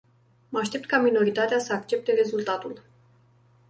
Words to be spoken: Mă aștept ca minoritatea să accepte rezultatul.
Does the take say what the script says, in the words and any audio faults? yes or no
yes